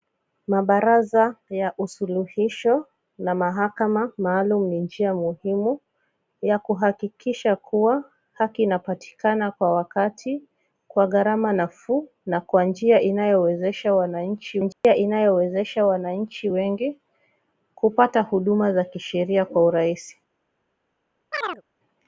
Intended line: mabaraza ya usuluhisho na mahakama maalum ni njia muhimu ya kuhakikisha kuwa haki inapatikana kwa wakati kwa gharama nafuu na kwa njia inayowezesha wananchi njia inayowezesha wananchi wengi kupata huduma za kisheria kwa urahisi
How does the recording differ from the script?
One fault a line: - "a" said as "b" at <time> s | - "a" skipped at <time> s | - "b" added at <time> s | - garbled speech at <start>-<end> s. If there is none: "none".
none